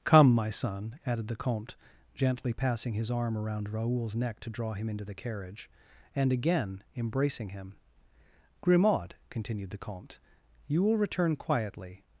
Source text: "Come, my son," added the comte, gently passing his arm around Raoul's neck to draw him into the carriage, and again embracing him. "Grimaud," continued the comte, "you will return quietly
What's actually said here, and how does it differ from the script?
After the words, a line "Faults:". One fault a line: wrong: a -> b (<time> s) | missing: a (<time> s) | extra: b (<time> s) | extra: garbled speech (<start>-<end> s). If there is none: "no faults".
"Come, my son," added the comte, gently passing his arm around Raoul's neck to draw him into the carriage, and again embracing him. "Grimaud," continued the comte, "you will return quietly
Faults:
no faults